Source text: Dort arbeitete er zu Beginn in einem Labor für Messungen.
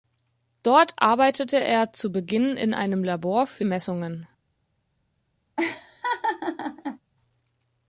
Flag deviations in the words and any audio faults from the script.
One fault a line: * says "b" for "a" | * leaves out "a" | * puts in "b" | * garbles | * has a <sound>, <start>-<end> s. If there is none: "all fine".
* has a laugh, 5.6-7.0 s